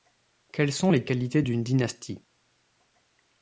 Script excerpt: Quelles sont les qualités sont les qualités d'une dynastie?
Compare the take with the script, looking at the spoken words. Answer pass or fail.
fail